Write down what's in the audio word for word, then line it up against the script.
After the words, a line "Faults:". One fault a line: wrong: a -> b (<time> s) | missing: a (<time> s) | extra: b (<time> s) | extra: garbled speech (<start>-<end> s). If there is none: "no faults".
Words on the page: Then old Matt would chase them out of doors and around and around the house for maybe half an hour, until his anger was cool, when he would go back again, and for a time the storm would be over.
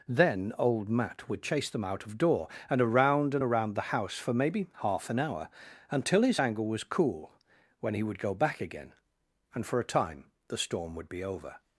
Then old Matt would chase them out of door and around and around the house for maybe half an hour, until his anger was cool, when he would go back again, and for a time the storm would be over.
Faults:
wrong: doors -> door (2.2 s)